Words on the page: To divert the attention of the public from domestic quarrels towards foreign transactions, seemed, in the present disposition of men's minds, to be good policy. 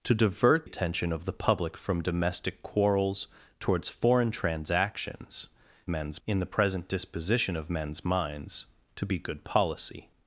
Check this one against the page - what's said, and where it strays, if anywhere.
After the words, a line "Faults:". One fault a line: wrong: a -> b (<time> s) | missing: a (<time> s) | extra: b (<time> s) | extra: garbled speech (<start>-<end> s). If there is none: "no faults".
To divert attention of the public from domestic quarrels towards foreign transactions, men's, in the present disposition of men's minds, to be good policy.
Faults:
missing: the (0.7 s)
wrong: seemed -> men's (5.9 s)